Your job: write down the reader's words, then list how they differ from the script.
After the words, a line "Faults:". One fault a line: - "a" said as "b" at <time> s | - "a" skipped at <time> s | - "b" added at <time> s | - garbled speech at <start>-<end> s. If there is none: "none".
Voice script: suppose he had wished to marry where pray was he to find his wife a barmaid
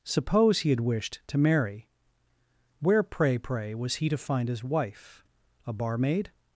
suppose he had wished to marry where pray pray was he to find his wife a barmaid
Faults:
- "pray" added at 3.4 s